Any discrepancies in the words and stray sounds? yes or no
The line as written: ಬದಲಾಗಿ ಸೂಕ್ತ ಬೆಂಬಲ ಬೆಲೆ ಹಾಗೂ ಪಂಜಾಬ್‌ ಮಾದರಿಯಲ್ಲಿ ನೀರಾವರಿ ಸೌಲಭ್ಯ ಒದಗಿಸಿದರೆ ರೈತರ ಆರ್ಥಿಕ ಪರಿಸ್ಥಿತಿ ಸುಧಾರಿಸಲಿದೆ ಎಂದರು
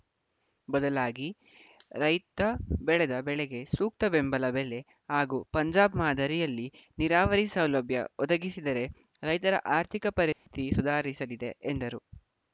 yes